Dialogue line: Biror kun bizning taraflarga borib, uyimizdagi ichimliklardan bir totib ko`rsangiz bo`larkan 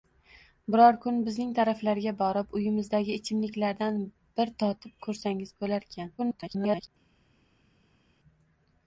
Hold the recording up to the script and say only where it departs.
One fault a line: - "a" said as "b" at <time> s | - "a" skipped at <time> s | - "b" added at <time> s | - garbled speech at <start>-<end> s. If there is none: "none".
- garbled speech at 6.2-6.9 s